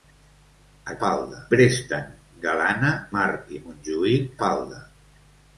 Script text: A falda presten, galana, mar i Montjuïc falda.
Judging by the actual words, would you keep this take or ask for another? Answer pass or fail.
pass